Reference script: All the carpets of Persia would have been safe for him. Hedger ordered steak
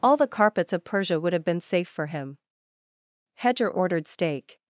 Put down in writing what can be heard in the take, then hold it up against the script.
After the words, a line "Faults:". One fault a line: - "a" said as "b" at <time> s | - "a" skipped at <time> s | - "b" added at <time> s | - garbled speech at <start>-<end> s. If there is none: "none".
All the carpets of Persia would have been safe for him. Hedger ordered steak
Faults:
none